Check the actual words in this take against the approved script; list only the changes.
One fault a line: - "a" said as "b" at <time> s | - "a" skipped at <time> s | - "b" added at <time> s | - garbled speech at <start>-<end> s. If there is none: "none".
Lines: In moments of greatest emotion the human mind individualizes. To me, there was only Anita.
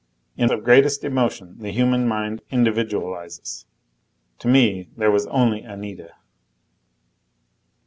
- "moments" skipped at 0.5 s